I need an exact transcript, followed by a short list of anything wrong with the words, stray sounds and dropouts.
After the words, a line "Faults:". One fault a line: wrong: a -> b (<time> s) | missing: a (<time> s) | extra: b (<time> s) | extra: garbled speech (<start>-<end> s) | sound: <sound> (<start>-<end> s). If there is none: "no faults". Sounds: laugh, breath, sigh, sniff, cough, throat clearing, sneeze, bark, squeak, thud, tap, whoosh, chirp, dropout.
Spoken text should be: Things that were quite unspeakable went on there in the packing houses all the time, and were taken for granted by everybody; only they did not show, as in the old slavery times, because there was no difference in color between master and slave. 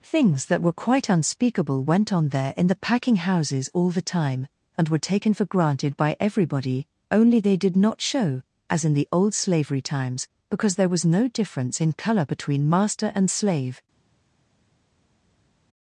Things that were quite unspeakable went on there in the packing houses all the time, and were taken for granted by everybody; only they did not show, as in the old slavery times, because there was no difference in color between master and slave.
Faults:
no faults